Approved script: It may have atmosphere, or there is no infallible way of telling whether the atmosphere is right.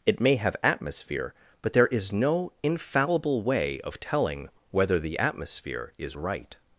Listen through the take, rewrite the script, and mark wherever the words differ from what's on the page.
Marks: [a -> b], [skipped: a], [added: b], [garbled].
It may have atmosphere, [or -> but] there is no infallible way of telling whether the atmosphere is right.